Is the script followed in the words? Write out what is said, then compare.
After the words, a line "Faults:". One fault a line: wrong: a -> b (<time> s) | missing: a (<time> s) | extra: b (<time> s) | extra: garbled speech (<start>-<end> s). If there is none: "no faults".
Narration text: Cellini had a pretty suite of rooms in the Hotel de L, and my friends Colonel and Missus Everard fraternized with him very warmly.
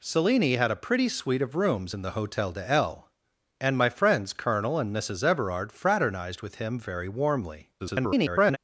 Cellini had a pretty suite of rooms in the Hotel de L, and my friends Colonel and Missus Everard fraternized with him very warmly. [garbled]
Faults:
extra: garbled speech (7.8-8.6 s)